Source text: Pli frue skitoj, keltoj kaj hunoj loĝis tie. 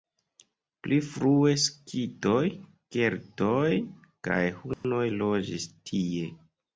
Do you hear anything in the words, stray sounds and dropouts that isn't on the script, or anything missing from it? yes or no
yes